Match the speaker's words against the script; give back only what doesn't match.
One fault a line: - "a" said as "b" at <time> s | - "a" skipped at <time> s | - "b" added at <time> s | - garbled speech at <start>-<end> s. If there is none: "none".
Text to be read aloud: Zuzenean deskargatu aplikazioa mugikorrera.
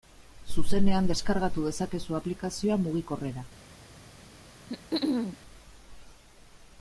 - "dezakezu" added at 1.7 s